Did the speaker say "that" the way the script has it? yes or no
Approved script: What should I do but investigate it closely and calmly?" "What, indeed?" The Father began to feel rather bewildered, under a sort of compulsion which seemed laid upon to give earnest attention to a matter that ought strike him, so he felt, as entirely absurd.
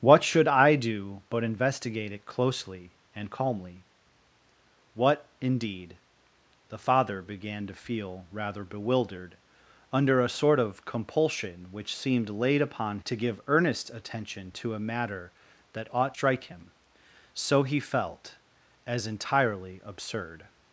yes